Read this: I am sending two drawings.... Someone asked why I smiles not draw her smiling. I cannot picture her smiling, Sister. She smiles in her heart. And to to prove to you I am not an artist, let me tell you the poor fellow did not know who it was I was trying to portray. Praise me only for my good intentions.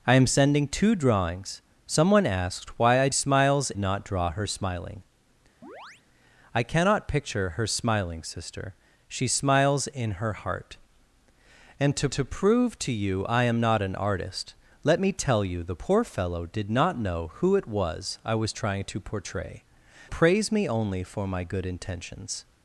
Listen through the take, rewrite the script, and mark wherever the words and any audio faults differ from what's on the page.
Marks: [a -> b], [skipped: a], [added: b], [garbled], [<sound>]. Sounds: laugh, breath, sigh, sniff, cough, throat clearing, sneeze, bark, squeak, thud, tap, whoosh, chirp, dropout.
I am sending two drawings.... Someone asked why I smiles not draw her smiling. [chirp] I cannot picture her smiling, Sister. She smiles in her heart. And to to prove to you I am not an artist, let me tell you the poor fellow did not know who it was I was trying to portray. Praise me only for my good intentions.